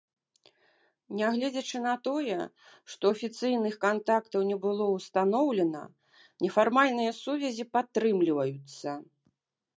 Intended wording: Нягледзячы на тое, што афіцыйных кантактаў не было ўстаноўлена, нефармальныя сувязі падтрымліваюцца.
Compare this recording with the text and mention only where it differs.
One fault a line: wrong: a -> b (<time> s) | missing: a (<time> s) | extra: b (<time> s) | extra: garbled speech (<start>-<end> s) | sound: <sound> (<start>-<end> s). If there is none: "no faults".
no faults